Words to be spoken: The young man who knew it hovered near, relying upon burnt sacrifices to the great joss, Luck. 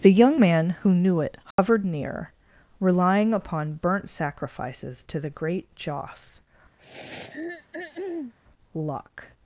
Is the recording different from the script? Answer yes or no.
no